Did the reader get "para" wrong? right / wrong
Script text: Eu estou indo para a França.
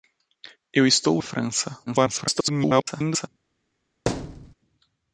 wrong